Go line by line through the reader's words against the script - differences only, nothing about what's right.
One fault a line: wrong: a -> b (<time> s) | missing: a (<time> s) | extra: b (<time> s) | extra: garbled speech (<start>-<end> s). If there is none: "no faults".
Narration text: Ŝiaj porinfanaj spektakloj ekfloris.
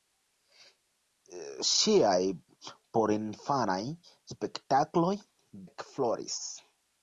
no faults